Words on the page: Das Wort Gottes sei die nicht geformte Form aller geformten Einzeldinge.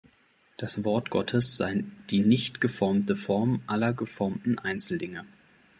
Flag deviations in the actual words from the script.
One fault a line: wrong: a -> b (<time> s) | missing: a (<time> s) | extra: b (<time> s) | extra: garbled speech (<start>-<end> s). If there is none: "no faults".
no faults